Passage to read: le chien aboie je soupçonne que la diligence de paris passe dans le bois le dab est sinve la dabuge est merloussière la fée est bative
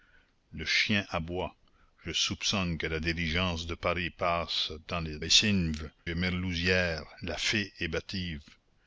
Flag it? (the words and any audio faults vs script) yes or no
yes